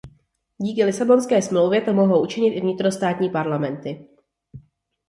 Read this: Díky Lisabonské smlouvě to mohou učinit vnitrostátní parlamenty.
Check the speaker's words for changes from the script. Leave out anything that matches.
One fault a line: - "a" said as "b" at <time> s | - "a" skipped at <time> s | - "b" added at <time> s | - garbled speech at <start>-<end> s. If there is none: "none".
- "i" added at 2.5 s